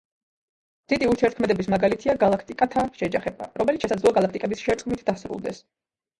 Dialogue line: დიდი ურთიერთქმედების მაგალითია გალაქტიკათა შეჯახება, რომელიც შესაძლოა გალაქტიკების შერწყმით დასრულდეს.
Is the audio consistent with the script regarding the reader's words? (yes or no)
yes